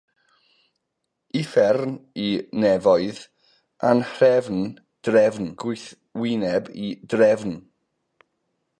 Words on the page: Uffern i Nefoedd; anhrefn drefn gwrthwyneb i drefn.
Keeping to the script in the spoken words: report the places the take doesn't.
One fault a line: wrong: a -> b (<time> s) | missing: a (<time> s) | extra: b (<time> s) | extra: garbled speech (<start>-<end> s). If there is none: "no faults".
no faults